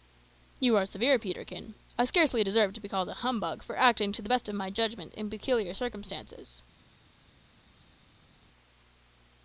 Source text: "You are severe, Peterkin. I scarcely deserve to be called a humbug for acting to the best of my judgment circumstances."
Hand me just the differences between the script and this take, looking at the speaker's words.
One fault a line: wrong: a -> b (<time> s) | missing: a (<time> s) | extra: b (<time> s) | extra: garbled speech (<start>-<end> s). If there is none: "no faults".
extra: in peculiar (5.1 s)